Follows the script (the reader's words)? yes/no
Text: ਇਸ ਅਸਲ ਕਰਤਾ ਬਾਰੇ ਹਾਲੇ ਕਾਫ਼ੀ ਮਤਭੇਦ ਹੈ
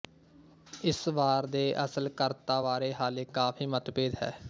no